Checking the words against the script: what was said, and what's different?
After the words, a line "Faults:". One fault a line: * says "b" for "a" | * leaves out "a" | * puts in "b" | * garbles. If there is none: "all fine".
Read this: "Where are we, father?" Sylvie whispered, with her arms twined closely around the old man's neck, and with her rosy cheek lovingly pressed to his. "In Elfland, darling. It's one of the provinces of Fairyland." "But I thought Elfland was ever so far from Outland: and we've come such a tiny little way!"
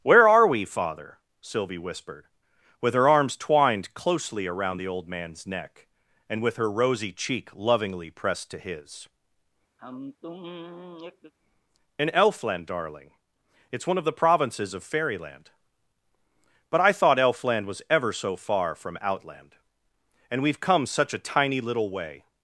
"Where are we, father?" Sylvie whispered, with her arms twined closely around the old man's neck, and with her rosy cheek lovingly pressed to his. "In Elfland, darling. It's one of the provinces of Fairyland." "But I thought Elfland was ever so far from Outland: and we've come such a tiny little way!"
Faults:
all fine